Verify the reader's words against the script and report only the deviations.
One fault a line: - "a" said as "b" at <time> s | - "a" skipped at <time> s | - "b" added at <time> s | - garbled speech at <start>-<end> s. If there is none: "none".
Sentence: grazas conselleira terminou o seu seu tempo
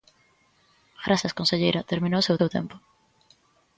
none